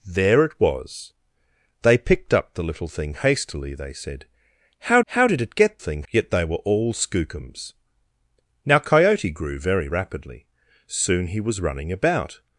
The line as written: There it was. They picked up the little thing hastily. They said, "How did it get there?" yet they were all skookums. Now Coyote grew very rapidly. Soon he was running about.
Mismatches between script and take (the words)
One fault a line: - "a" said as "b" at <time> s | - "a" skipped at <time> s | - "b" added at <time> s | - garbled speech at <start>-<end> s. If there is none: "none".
- "how" added at 5.1 s
- "there" said as "thing" at 5.8 s